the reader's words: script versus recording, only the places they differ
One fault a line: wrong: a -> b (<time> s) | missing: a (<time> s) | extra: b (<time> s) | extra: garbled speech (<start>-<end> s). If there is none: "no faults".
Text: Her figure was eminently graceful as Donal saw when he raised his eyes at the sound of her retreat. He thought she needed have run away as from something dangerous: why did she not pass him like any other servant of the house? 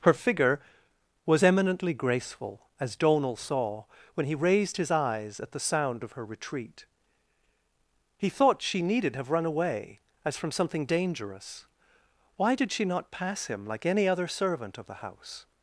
no faults